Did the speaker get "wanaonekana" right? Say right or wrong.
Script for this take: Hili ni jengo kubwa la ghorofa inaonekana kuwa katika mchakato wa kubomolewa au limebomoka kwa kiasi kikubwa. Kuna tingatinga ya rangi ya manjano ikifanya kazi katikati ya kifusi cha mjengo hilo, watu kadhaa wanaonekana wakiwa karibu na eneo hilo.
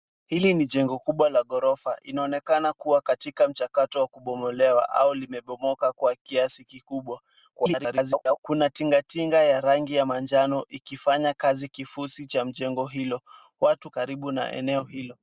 wrong